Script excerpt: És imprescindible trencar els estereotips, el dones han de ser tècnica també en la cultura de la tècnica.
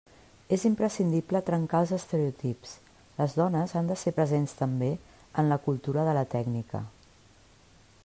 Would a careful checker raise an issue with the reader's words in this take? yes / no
yes